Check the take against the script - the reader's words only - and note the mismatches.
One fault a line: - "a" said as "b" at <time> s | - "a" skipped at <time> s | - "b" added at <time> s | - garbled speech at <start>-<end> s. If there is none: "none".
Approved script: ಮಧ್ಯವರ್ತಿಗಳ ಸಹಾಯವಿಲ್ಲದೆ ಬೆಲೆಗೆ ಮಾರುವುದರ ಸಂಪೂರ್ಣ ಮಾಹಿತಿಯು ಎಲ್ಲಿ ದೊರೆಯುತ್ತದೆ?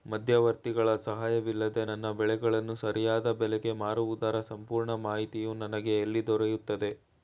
- "ನನ್ನ ಬೆಳೆಗಳನ್ನು ಸರಿಯಾದ" added at 1.8 s
- "ನನಗೆ" added at 5.5 s